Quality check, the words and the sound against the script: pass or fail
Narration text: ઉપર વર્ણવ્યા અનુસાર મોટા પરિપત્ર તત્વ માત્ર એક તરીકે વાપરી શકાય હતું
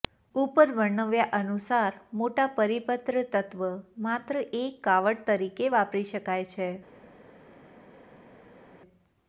fail